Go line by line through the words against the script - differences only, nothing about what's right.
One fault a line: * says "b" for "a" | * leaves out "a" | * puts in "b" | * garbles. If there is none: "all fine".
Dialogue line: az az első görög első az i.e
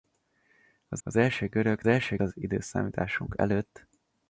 all fine